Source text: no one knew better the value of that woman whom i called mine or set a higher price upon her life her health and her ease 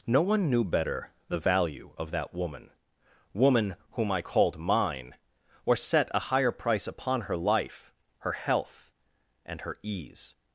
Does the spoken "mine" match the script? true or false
true